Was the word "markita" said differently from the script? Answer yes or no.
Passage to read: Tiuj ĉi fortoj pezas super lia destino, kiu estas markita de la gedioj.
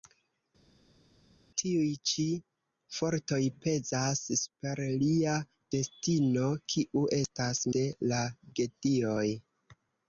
yes